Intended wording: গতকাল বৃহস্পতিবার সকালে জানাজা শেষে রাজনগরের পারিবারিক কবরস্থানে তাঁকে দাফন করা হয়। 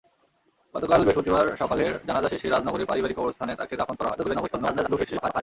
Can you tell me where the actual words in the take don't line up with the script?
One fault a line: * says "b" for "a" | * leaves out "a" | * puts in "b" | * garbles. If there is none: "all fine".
* garbles